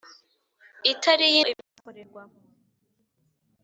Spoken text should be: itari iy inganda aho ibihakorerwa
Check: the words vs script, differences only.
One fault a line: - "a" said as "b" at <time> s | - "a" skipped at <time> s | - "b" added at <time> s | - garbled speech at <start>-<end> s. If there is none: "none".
- "inganda aho" skipped at 1.4 s